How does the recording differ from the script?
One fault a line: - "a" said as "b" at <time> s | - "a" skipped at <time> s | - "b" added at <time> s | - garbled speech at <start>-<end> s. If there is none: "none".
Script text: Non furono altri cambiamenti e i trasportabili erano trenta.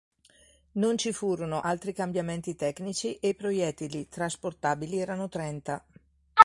- "ci" added at 1.0 s
- "tecnici" added at 2.5 s
- "proiettili" added at 3.3 s